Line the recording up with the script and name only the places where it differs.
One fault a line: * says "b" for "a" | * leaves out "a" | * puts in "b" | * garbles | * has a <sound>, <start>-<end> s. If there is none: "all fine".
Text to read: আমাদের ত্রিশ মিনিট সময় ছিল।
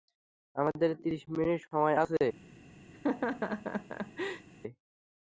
* says "আছে" for "ছিল"
* has a laugh, 2.9-4.5 s